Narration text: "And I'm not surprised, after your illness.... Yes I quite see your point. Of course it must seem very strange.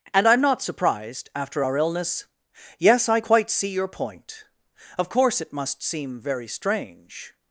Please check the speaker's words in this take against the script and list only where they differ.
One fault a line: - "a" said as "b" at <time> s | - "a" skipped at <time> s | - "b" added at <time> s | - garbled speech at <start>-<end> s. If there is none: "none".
- "your" said as "our" at 1.6 s